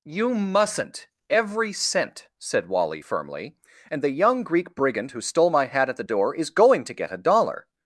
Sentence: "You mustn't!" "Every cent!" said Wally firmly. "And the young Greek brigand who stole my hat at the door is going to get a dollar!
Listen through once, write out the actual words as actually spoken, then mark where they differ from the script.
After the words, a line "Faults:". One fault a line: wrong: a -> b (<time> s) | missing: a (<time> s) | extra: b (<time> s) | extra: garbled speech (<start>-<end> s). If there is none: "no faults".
"You mustn't!" "Every cent!" said Wally firmly. "And the young Greek brigand who stole my hat at the door is going to get a dollar!
Faults:
no faults